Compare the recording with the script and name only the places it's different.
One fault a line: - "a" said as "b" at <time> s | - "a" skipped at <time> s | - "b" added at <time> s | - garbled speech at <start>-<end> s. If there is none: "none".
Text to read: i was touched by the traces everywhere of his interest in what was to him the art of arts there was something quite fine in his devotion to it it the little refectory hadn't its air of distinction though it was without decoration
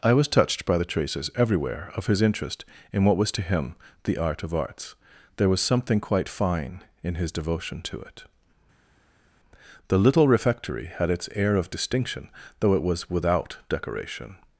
- "it" skipped at 8.2 s
- "hadn't" said as "had" at 10.9 s